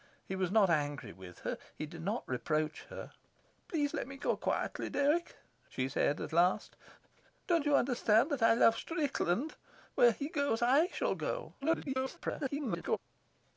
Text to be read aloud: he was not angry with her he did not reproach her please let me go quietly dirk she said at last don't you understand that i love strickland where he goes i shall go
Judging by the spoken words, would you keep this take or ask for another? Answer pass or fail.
fail